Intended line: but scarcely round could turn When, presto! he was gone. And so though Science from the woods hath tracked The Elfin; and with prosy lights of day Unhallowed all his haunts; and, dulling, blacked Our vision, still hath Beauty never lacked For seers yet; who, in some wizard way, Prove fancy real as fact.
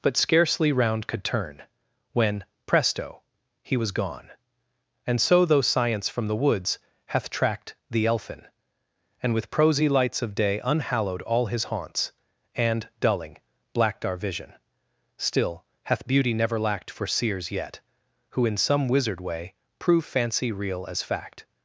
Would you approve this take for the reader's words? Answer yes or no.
yes